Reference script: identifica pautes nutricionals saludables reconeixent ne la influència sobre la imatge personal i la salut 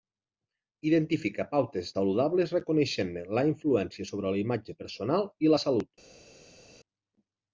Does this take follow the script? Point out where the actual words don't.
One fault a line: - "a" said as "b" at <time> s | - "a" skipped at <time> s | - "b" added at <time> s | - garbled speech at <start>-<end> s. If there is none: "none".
- "nutricionals" skipped at 1.9 s